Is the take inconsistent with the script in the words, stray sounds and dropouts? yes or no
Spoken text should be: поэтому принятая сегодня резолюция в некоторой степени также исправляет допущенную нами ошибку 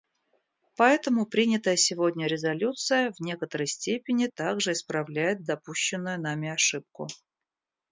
no